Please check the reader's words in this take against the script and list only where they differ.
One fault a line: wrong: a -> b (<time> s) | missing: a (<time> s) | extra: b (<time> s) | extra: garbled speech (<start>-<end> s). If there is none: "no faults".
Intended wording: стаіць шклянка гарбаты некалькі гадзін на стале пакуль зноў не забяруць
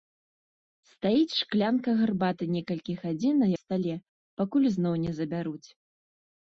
no faults